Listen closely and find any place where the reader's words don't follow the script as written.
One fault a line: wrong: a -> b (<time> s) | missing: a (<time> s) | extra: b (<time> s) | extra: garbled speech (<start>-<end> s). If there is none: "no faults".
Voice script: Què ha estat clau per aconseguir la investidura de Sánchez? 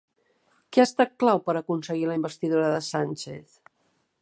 no faults